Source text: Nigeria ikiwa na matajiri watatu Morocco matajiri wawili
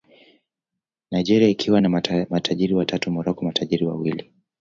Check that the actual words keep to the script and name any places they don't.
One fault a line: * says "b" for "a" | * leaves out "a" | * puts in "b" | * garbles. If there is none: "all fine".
all fine